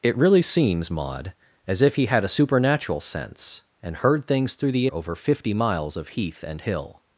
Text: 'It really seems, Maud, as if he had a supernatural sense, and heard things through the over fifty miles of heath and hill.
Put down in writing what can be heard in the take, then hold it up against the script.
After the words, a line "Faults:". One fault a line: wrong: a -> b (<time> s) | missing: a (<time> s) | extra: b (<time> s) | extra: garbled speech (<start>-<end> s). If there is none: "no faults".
'It really seems, Maud, as if he had a supernatural sense, and heard things through the over fifty miles of heath and hill.
Faults:
no faults